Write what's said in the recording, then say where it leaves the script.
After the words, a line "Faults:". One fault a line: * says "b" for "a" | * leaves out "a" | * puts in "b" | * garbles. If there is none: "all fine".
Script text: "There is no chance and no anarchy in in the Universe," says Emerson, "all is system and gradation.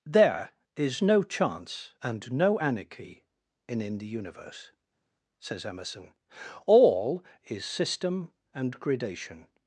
"There is no chance and no anarchy in in the Universe," says Emerson, "all is system and gradation.
Faults:
all fine